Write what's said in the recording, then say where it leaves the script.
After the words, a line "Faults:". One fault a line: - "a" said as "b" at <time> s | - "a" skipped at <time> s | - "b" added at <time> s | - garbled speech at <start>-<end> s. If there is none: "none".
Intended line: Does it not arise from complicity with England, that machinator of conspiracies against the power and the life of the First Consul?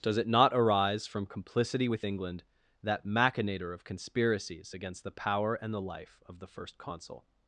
Does it not arise from complicity with England, that machinator of conspiracies against the power and the life of the First Consul?
Faults:
none